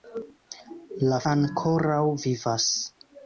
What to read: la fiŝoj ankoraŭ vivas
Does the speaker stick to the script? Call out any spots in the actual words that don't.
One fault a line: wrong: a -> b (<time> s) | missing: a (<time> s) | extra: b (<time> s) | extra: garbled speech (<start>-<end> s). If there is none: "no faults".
missing: fiŝoj (1.2 s)